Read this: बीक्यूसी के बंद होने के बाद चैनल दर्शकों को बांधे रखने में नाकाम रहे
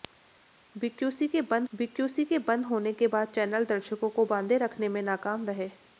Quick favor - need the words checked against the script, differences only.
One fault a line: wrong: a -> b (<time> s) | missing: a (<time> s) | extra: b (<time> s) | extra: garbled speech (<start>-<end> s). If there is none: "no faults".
extra: बीक्यूसी के बंद (1.7 s)